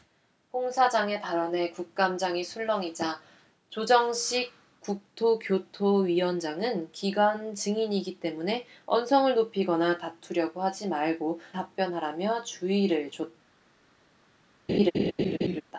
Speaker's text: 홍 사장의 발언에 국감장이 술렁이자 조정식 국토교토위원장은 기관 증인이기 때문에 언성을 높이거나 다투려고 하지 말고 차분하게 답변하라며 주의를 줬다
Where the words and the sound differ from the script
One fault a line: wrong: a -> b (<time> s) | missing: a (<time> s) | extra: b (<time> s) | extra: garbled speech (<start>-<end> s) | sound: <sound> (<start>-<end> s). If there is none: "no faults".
missing: 차분하게 (11.4 s)
sound: laugh (14.7-15.6 s)